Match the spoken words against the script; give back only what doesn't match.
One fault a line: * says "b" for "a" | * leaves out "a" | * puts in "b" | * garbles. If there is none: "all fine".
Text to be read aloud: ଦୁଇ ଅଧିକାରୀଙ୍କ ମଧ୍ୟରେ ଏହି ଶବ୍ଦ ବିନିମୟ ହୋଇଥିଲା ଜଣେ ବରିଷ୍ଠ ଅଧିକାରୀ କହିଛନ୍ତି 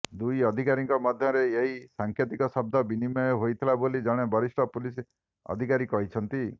* puts in "ସାଙ୍କେତିକ"
* puts in "ବୋଲି"
* puts in "ପୁଲିସ"